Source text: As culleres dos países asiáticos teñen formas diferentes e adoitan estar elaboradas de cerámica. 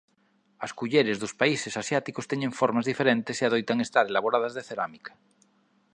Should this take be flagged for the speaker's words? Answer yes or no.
no